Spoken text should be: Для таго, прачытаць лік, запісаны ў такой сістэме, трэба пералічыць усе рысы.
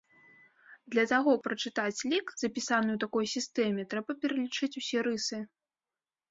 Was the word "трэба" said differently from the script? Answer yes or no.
no